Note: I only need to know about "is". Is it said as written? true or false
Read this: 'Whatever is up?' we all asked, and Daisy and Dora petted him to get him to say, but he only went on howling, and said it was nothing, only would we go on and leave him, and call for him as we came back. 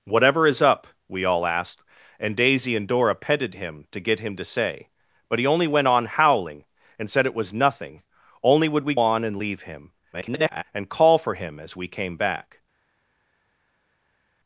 true